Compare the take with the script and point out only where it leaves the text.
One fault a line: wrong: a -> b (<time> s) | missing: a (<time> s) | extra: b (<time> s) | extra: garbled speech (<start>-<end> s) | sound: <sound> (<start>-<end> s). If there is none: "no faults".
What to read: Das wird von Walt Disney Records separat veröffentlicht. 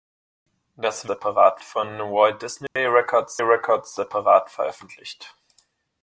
wrong: wird -> separat (1.0 s)
sound: dropout (2.7-2.8 s)
extra: Records (3.4 s)